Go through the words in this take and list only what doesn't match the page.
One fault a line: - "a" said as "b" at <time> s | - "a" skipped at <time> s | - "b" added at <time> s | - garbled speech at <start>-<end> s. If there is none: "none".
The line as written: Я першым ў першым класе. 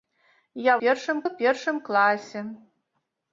none